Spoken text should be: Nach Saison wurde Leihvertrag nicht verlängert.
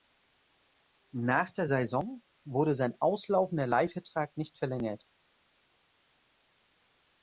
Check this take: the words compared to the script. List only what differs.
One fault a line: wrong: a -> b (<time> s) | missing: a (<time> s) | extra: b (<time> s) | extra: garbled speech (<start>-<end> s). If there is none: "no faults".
extra: der (1.5 s)
extra: sein auslaufender (2.7 s)